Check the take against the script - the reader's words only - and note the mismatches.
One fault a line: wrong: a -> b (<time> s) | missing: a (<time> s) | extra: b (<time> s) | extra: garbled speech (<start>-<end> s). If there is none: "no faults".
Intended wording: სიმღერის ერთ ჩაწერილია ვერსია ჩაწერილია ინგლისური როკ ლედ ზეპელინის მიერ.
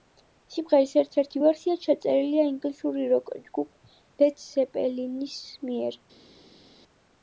wrong: ჩაწერილია -> ერთი (1.2 s)
extra: ჯგუფ (3.5 s)